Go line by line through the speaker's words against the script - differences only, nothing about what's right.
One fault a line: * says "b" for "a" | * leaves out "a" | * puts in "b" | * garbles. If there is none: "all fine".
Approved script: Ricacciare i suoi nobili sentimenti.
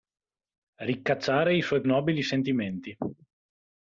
all fine